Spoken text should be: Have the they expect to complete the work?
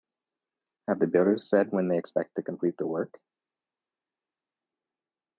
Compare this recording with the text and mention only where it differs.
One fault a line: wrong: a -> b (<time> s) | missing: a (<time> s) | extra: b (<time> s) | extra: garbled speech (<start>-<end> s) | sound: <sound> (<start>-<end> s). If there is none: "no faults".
extra: builders said when (1.1 s)